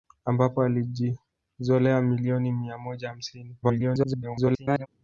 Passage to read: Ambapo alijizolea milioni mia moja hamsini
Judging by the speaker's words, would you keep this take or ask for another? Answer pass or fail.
fail